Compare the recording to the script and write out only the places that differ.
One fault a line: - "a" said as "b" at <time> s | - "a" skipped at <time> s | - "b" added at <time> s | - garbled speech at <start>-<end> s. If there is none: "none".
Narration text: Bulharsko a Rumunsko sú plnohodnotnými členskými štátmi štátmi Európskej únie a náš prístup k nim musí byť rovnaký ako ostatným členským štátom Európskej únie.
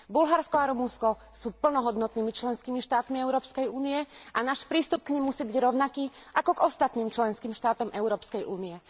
- "štátmi" skipped at 3.2 s
- "k" added at 6.5 s